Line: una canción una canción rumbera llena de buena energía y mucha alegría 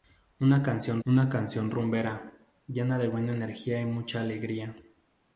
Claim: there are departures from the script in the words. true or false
false